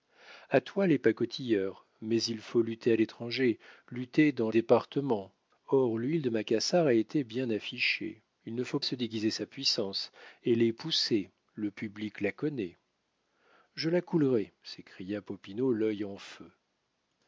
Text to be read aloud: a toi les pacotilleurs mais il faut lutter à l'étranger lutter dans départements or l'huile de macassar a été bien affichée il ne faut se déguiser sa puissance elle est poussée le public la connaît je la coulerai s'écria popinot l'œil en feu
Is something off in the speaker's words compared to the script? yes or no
no